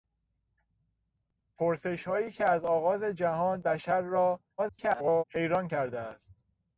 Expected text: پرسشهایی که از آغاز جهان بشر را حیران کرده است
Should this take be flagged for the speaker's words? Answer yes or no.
yes